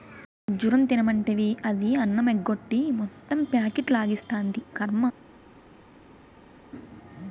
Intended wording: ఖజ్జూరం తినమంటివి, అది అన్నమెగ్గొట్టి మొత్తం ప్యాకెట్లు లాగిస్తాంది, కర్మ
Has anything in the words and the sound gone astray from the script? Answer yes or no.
no